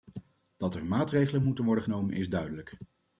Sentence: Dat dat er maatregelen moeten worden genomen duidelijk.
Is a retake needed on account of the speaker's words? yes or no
yes